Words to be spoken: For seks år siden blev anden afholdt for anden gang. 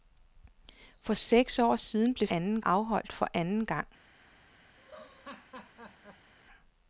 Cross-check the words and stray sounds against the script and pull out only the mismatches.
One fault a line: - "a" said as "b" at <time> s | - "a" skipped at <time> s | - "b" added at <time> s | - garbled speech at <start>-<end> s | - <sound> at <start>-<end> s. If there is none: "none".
- laugh at 4.8-6.3 s